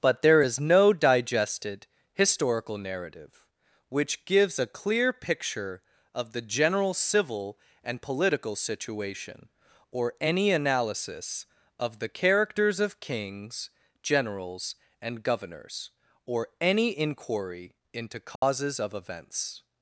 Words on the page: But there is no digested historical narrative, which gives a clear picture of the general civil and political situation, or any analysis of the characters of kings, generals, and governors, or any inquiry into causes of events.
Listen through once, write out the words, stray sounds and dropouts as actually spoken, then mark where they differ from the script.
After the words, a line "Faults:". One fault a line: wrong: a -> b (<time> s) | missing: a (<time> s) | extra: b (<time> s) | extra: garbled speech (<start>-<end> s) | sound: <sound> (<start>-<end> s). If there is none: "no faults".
But there is no digested historical narrative, which gives a clear picture of the general civil and political situation, or any analysis of the characters of kings, generals, and governors, or any inquiry into causes of events.
Faults:
sound: dropout (18.4-18.4 s)